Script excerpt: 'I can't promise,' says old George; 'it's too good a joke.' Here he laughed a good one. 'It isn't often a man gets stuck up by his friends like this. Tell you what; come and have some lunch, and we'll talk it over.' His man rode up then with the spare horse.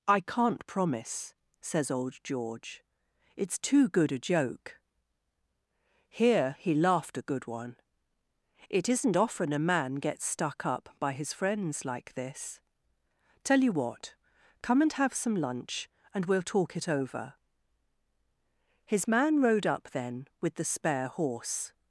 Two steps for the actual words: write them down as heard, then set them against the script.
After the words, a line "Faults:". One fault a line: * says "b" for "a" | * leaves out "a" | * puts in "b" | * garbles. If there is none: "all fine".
'I can't promise,' says old George; 'it's too good a joke.' Here he laughed a good one. 'It isn't often a man gets stuck up by his friends like this. Tell you what; come and have some lunch, and we'll talk it over.' His man rode up then with the spare horse.
Faults:
all fine